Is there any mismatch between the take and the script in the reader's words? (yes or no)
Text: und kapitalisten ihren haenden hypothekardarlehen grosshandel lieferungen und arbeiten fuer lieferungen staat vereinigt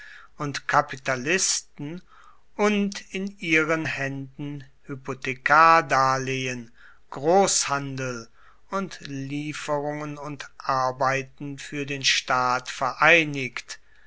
yes